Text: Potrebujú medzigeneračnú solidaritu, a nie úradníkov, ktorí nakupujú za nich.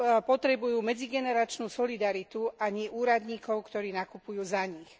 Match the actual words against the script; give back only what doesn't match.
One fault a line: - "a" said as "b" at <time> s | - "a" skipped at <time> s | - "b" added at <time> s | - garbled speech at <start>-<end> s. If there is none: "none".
none